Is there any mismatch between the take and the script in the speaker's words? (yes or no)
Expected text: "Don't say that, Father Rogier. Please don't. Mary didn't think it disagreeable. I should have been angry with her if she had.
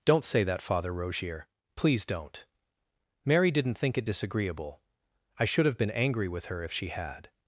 no